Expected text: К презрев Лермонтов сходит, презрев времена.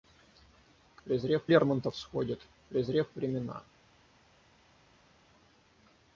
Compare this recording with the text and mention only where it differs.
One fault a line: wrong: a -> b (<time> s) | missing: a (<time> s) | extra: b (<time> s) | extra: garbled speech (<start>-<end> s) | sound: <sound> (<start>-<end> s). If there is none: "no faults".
no faults